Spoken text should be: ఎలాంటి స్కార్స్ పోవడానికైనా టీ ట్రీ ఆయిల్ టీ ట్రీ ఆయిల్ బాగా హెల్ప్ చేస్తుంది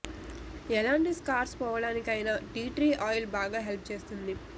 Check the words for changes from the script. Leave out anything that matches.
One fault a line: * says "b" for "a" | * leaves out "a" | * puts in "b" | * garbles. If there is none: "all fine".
* leaves out "టీ ట్రీ ఆయిల్"